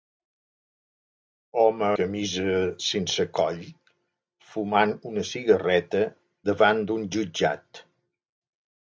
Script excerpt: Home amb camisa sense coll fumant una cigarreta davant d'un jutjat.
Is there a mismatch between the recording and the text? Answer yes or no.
yes